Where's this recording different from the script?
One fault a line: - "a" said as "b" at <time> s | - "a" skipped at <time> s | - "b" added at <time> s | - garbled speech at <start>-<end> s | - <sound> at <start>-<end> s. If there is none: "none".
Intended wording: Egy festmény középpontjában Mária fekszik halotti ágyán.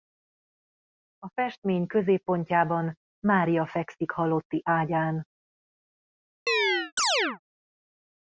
- "Egy" said as "A" at 1.2 s
- chirp at 6.5-7.4 s